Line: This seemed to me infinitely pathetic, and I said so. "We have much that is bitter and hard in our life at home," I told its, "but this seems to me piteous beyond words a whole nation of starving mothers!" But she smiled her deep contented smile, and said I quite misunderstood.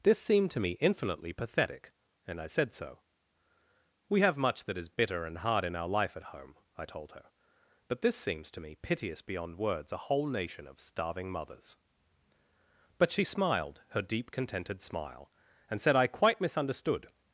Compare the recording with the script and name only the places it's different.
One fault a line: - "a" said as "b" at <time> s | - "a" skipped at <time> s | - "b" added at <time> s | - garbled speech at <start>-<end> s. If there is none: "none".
- "its" said as "her" at 7.1 s